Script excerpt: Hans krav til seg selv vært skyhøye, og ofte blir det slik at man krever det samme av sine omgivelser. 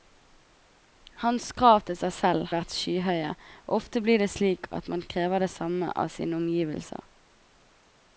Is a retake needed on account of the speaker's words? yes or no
no